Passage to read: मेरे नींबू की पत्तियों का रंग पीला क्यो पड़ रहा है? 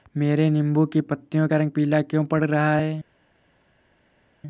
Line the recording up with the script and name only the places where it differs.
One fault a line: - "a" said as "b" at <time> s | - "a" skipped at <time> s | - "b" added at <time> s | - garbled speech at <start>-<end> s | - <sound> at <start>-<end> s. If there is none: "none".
none